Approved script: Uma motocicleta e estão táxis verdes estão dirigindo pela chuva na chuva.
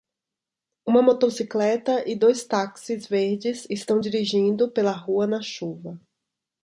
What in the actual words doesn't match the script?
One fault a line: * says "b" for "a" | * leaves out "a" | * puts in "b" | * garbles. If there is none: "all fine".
* says "dois" for "estão"
* says "rua" for "chuva"